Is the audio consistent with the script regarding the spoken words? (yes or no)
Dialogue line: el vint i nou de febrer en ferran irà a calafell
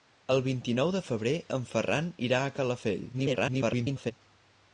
no